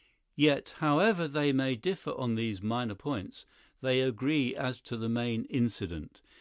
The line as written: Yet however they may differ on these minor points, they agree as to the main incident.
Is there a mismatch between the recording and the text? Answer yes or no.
no